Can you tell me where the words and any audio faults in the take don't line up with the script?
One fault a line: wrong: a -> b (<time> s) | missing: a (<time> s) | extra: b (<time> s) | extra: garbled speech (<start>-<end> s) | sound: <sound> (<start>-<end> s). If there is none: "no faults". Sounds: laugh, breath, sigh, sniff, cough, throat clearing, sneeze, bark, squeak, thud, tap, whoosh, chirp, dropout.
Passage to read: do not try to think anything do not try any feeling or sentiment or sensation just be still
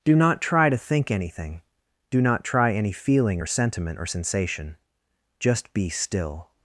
no faults